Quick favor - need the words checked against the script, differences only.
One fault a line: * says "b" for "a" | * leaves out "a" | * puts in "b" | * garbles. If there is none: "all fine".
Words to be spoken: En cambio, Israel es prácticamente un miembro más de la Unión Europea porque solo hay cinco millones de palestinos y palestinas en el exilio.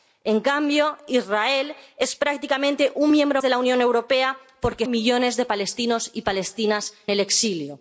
* leaves out "más"
* leaves out "solo hay cinco"
* leaves out "en"